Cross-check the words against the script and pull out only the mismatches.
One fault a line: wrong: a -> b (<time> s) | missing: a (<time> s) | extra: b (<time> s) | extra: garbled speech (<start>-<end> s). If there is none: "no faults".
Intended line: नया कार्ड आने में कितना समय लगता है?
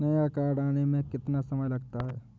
no faults